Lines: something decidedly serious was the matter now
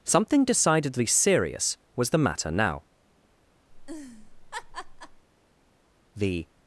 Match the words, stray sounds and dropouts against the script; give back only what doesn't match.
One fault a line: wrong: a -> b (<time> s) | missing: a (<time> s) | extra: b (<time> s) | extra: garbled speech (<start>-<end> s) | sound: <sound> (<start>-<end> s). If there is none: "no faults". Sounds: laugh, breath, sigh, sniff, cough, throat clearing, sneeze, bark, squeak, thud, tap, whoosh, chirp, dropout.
sound: laugh (3.7-5.2 s)
extra: the (6.1 s)